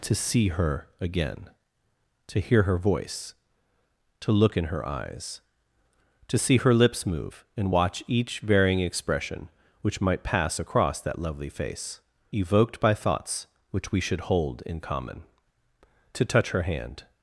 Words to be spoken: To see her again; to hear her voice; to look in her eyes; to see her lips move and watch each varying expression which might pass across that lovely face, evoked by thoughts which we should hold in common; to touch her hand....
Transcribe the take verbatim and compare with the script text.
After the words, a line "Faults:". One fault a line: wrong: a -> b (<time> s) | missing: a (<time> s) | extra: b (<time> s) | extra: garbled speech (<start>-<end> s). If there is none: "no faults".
To see her again; to hear her voice; to look in her eyes; to see her lips move and watch each varying expression which might pass across that lovely face, evoked by thoughts which we should hold in common; to touch her hand....
Faults:
no faults